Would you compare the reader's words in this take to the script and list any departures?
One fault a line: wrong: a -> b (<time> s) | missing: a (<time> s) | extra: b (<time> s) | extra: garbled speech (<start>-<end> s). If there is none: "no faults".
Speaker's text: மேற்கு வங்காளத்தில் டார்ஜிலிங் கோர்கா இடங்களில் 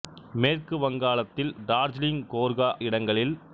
no faults